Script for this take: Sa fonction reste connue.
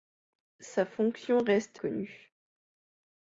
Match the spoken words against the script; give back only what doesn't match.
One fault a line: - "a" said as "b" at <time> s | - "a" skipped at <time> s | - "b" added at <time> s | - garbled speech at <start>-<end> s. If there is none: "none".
none